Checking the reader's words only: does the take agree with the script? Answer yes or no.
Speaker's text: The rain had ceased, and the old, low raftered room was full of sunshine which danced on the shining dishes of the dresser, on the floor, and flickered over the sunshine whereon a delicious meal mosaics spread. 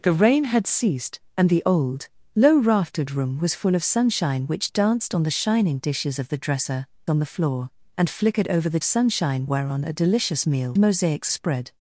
yes